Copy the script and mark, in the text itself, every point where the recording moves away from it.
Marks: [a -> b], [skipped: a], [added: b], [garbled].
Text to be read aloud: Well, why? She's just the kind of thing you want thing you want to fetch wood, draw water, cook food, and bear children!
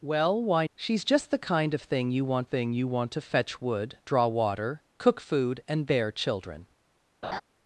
Well, why? She's just the kind of thing you want thing you want to fetch wood, draw water, cook food, and bear children!